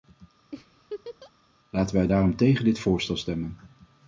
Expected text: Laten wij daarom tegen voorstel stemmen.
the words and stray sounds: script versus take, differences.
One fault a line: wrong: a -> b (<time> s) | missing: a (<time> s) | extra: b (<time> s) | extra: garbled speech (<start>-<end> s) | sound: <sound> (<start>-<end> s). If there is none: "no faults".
sound: laugh (0.5-1.3 s)
extra: dit (2.6 s)